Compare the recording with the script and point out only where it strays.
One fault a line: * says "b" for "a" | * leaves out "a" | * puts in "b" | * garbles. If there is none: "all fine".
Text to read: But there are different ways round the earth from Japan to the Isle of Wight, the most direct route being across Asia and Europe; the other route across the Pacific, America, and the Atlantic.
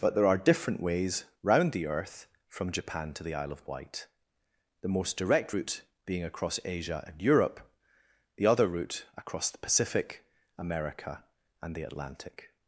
all fine